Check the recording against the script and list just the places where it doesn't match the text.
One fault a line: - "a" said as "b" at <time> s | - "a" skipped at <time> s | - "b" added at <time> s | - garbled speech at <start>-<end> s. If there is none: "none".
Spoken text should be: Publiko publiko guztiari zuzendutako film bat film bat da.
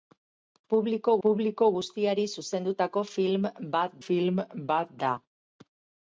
none